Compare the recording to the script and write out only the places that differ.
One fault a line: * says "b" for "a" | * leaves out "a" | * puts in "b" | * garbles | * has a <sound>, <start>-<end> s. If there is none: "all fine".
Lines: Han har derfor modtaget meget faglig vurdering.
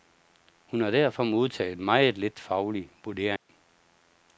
* says "Hun" for "Han"
* puts in "lidt"
* has a dropout, 3.4-3.5 s